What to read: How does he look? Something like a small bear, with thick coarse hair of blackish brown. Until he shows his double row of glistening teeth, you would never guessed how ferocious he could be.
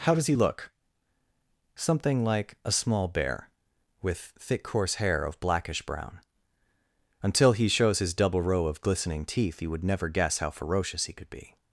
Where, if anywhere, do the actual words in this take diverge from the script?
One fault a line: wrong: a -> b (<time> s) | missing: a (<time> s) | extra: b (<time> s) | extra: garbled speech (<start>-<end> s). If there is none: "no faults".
wrong: guessed -> guess (10.1 s)